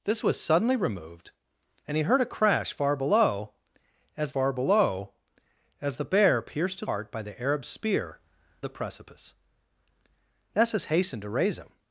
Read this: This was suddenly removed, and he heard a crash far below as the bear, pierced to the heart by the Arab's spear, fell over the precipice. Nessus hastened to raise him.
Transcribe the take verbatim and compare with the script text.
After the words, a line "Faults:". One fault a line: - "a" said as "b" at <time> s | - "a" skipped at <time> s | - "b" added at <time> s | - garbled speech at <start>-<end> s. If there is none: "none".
This was suddenly removed, and he heard a crash far below as far below as the bear, pierced to heart by the Arab's spear, the precipice. Nessus hastened to raise him.
Faults:
- "far below as" added at 4.3 s
- "the" skipped at 6.9 s
- "fell over" skipped at 8.2 s